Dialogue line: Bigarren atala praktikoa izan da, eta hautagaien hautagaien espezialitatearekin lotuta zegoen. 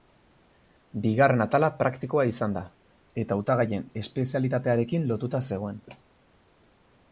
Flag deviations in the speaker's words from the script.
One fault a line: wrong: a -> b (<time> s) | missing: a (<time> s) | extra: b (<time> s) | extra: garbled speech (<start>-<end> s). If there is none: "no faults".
missing: hautagaien (3.9 s)